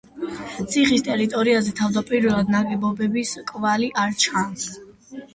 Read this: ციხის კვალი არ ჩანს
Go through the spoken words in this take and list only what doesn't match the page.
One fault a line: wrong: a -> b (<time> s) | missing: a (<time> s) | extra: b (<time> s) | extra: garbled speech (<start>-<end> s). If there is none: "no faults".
extra: ტერიტორიაზე თავდაპირველად ნაგებობების (1.1 s)